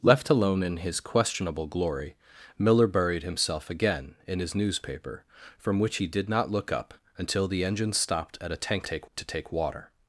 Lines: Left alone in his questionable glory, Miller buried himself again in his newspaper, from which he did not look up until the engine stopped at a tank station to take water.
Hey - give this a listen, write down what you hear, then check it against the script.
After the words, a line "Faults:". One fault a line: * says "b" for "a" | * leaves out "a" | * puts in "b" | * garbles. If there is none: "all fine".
Left alone in his questionable glory, Miller buried himself again in his newspaper, from which he did not look up until the engine stopped at a tank take to take water.
Faults:
* says "take" for "station"